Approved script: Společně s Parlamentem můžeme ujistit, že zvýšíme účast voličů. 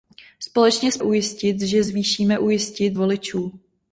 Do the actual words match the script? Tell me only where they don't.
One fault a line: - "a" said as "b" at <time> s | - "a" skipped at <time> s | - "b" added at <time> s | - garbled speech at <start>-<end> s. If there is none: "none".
- "Parlamentem můžeme" skipped at 1.0 s
- "účast" said as "ujistit" at 2.4 s